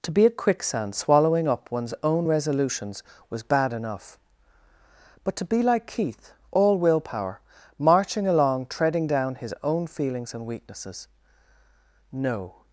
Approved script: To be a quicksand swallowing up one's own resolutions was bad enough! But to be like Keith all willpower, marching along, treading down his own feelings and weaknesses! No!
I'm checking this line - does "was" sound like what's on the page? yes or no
yes